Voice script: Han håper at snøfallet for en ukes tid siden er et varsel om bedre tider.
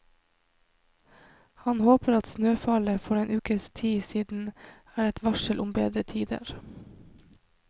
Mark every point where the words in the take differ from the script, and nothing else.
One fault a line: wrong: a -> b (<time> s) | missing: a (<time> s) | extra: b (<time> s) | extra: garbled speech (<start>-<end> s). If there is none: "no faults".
no faults